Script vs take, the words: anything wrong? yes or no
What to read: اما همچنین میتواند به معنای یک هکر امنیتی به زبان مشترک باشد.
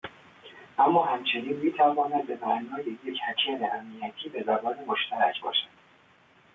no